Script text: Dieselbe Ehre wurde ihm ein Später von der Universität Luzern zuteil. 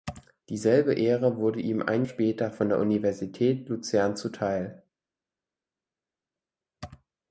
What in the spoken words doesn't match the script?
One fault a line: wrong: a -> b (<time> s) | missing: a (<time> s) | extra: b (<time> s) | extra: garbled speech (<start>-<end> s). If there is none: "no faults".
no faults